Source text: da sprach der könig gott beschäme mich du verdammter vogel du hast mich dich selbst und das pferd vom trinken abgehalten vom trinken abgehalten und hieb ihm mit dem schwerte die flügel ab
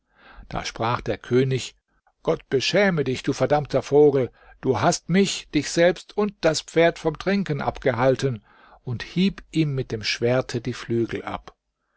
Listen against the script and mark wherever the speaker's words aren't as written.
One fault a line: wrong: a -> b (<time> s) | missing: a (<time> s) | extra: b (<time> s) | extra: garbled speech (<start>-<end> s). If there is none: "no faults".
wrong: mich -> dich (3.0 s)
missing: vom trinken abgehalten (8.4 s)